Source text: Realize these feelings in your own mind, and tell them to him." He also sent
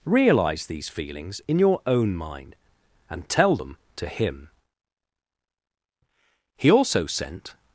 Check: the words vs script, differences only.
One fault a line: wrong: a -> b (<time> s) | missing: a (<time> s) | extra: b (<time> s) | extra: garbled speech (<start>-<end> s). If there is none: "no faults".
no faults